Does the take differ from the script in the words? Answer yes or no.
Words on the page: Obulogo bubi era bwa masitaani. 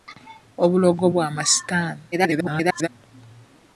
yes